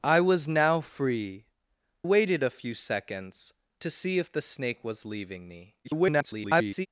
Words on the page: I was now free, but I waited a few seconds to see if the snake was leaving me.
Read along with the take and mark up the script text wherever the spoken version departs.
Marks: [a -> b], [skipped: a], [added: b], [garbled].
I was now free, [skipped: but I] waited a few seconds to see if the snake was leaving me. [garbled]